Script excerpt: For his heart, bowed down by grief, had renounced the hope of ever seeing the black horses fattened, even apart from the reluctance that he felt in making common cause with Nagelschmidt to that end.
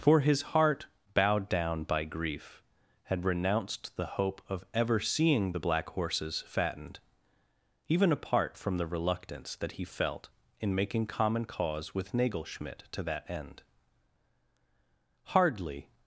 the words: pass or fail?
fail